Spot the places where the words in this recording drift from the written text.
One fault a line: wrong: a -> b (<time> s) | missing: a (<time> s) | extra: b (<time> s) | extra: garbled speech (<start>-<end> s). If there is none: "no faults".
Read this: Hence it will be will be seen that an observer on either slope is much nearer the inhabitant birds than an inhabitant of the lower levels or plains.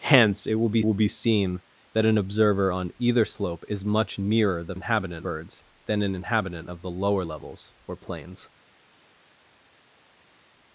no faults